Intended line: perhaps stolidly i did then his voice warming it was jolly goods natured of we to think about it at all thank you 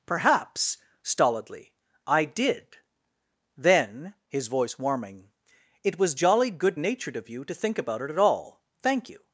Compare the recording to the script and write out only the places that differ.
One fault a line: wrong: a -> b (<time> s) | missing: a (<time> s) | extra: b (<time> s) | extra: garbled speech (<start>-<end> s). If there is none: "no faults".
wrong: goods -> good (6.5 s)
wrong: we -> you (7.3 s)